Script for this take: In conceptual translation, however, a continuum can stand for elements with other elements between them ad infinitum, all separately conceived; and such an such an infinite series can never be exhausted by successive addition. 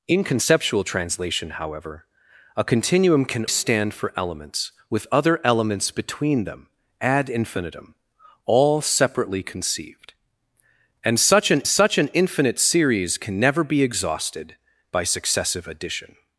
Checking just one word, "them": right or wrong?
right